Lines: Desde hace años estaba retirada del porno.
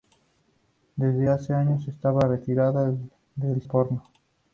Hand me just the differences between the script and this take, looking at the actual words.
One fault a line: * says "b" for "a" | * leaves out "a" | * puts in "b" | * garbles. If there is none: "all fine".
all fine